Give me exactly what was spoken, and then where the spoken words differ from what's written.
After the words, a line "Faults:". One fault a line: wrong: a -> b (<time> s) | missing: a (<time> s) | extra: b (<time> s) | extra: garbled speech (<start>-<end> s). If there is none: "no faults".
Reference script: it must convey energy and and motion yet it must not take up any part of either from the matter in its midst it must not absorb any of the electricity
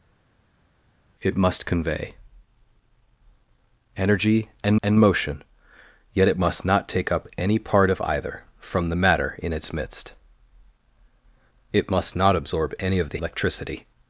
it must convey energy and and motion yet it must not take up any part of either from the matter in its midst it must not absorb any of the electricity
Faults:
no faults